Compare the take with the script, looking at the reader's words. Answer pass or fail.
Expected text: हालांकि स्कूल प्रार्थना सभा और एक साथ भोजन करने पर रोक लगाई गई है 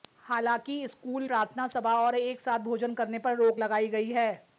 pass